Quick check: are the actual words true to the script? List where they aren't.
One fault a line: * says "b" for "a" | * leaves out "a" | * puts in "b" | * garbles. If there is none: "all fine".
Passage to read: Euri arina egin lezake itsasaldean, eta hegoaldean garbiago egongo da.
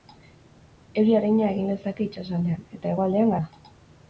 * leaves out "garbiago egongo"